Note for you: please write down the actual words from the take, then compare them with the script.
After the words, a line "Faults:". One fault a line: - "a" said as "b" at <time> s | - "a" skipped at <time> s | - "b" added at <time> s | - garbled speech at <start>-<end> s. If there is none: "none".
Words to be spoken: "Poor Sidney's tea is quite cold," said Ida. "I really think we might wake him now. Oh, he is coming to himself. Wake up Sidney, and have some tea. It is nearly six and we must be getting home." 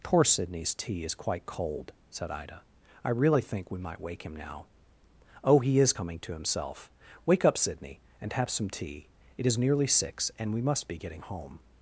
"Poor Sidney's tea is quite cold," said Ida. "I really think we might wake him now. Oh, he is coming to himself. Wake up Sidney, and have some tea. It is nearly six and we must be getting home."
Faults:
none